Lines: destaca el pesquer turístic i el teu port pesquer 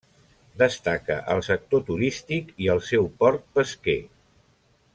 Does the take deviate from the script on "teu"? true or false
true